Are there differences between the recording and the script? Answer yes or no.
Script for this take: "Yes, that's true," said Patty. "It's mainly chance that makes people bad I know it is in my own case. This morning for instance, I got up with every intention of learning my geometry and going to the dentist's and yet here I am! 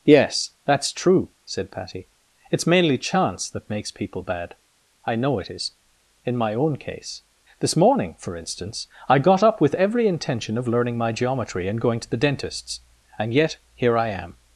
no